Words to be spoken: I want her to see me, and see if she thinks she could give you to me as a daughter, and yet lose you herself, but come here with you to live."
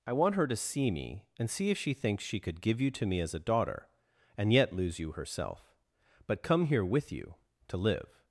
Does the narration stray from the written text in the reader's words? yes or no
no